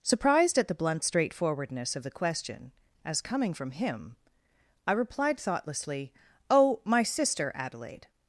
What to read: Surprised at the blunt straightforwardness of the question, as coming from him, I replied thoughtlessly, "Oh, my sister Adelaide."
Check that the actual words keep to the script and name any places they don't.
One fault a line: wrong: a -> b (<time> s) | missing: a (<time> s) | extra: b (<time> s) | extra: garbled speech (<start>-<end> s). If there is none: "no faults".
no faults